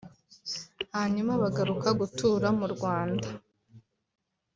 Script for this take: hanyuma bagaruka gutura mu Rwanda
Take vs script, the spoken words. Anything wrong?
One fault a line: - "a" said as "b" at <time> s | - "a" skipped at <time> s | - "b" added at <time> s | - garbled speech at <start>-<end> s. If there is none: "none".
none